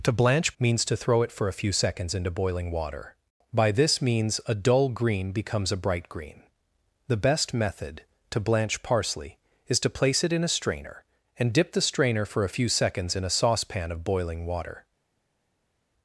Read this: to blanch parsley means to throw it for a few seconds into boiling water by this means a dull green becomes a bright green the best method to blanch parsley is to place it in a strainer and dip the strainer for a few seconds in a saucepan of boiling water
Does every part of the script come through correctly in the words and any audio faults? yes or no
no